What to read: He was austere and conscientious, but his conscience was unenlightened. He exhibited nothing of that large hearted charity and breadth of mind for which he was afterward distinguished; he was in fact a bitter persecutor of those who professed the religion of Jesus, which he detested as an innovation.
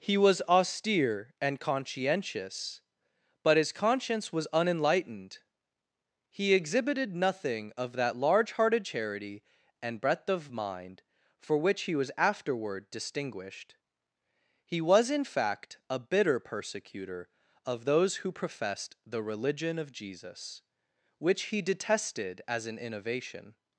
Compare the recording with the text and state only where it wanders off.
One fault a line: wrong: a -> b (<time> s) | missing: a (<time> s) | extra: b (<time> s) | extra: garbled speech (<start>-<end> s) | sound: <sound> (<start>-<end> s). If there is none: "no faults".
no faults